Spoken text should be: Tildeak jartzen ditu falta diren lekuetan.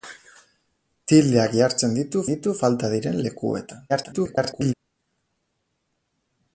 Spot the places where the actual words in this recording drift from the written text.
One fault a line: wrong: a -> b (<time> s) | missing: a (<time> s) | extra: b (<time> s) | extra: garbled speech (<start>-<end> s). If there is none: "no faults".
extra: ditu (2.3 s)
extra: garbled speech (3.9-4.7 s)